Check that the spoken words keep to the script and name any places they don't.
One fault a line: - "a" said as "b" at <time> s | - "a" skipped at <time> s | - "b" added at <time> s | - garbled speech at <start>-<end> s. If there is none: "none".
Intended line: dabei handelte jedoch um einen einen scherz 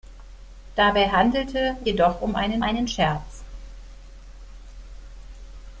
none